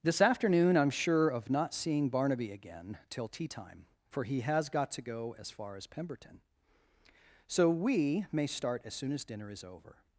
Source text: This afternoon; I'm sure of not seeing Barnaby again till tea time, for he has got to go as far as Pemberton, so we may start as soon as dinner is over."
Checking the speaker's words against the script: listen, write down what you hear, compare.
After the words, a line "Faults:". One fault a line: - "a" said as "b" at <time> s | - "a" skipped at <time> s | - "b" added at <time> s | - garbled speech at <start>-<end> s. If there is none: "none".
This afternoon; I'm sure of not seeing Barnaby again till tea time, for he has got to go as far as Pemberton, so we may start as soon as dinner is over."
Faults:
none